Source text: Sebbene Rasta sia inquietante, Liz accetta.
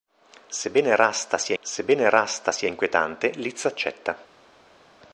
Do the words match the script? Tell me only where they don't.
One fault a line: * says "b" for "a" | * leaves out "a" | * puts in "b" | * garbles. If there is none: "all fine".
* puts in "sebbene Rasta sia"